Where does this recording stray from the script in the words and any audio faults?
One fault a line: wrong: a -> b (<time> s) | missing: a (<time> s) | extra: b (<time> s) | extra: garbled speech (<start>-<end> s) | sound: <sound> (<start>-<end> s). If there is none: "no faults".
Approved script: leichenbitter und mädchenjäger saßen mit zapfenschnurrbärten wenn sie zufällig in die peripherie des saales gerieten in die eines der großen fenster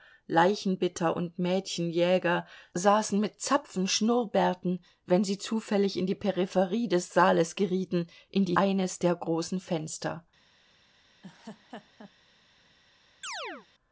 sound: laugh (11.2-12.1 s)
sound: chirp (13.2-13.7 s)